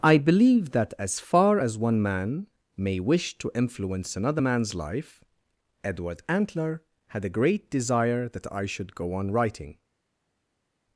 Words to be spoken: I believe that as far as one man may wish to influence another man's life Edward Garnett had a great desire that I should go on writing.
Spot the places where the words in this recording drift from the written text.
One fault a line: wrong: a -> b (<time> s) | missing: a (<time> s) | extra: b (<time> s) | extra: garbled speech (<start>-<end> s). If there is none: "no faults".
wrong: Garnett -> Antler (6.3 s)